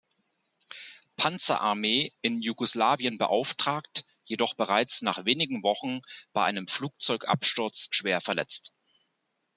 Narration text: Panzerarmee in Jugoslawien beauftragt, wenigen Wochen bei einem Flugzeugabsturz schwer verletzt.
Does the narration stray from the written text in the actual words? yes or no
yes